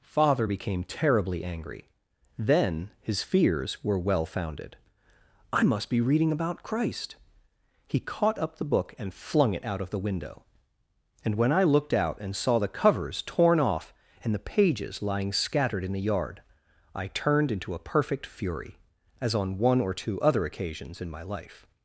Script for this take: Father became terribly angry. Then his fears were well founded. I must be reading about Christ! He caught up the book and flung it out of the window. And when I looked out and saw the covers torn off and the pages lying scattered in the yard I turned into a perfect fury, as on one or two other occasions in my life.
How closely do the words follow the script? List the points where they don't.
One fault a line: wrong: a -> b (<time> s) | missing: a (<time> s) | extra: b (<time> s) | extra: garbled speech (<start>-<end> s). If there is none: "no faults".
no faults